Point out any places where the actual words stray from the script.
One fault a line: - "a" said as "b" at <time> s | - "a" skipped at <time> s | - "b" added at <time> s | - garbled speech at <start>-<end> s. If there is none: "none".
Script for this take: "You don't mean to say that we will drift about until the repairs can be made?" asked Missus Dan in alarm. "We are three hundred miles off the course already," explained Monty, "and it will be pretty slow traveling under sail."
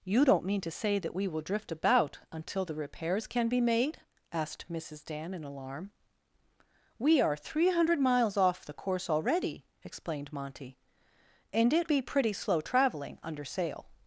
- "will" skipped at 11.9 s